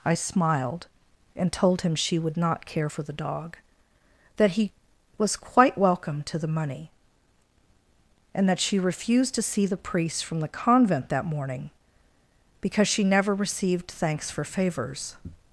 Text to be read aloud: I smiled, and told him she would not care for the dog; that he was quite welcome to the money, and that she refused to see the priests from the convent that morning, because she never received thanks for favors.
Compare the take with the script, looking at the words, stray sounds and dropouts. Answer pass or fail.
fail